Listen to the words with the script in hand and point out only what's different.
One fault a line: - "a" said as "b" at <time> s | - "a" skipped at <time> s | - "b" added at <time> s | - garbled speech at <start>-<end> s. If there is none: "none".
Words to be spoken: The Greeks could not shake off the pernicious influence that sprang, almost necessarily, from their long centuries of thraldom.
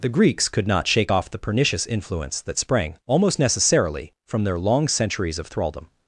none